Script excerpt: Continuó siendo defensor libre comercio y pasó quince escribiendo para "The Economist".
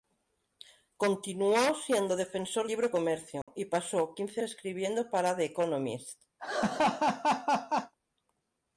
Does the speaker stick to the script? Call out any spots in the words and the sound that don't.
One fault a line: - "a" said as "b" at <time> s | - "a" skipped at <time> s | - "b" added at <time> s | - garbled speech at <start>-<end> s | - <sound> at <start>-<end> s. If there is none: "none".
- dropout at 3.4-3.5 s
- laugh at 6.4-7.9 s